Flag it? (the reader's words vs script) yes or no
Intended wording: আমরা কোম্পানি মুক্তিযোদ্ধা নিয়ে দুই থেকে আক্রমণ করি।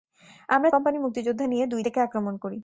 no